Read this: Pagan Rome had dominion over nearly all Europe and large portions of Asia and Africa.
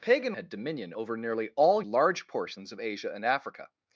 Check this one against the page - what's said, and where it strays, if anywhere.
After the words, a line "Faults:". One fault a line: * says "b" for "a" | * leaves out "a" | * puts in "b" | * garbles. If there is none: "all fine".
Pagan Had dominion over nearly all Large portions of Asia and Africa.
Faults:
* leaves out "Rome"
* leaves out "Europe and"